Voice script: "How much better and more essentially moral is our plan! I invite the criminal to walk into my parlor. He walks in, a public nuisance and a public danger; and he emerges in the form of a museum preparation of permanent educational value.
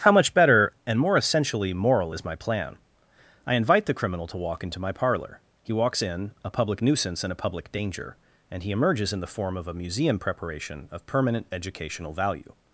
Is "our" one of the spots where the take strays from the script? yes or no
yes